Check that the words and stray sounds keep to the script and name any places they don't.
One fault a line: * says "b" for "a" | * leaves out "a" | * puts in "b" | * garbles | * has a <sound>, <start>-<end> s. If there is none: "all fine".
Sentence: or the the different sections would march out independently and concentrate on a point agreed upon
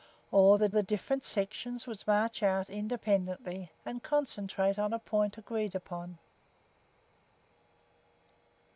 all fine